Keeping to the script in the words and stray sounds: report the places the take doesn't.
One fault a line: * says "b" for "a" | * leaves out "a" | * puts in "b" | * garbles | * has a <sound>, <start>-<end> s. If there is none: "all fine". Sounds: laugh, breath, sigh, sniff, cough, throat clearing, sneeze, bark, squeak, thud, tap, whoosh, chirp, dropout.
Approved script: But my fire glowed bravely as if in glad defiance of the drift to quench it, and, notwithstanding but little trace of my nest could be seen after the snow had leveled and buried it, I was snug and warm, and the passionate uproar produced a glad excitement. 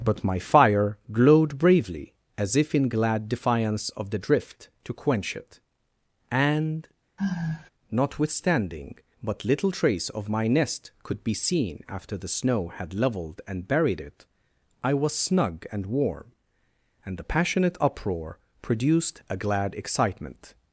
* has a sigh, 7.2-7.7 s